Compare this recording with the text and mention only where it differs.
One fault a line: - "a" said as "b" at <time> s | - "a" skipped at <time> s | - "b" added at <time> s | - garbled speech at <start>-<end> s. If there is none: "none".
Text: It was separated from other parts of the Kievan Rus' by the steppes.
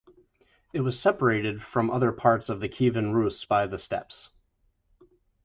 none